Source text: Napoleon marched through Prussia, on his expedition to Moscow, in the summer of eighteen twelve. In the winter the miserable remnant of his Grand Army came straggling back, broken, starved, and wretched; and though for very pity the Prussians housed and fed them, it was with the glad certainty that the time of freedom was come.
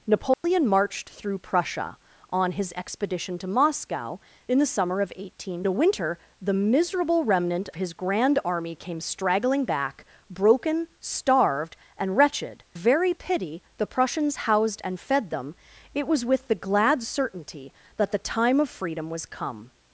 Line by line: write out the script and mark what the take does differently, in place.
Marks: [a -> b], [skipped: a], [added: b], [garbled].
Napoleon marched through Prussia, on his expedition to Moscow, in the summer of eighteen [skipped: twelve. In] the winter the miserable remnant [skipped: of] his Grand Army came straggling back, broken, starved, and wretched; [skipped: and though for] very pity the Prussians housed and fed them, it was with the glad certainty that the time of freedom was come.